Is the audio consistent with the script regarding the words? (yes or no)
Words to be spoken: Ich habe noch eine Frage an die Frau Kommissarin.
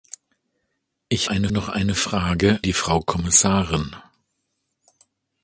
no